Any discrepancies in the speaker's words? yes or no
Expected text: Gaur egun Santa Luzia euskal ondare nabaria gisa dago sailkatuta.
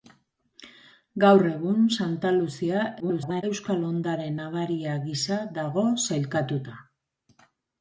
yes